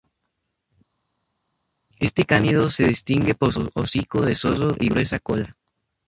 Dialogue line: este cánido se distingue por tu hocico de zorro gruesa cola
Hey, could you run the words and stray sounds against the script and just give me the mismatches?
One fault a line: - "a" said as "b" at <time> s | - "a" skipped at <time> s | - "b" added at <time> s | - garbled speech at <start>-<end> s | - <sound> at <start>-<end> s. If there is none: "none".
- "tu" said as "su" at 3.5 s
- "y" added at 4.8 s